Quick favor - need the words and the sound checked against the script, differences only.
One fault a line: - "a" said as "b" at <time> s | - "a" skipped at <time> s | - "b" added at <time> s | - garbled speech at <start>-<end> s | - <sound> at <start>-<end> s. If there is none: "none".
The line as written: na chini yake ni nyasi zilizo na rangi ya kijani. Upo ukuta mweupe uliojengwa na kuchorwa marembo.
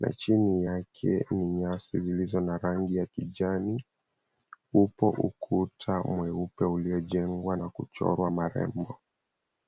none